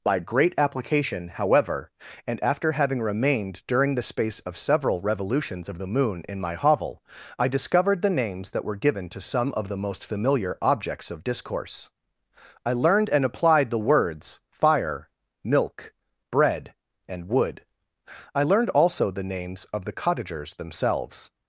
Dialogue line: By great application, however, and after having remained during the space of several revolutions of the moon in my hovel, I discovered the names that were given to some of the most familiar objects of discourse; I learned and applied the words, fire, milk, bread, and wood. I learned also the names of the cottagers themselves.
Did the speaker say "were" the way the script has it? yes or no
yes